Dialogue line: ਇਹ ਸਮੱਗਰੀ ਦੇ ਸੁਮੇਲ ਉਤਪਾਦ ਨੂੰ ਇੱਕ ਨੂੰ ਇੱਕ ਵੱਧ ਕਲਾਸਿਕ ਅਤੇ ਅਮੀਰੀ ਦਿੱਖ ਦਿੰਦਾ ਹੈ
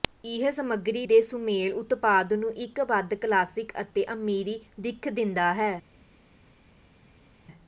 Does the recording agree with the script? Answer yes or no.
no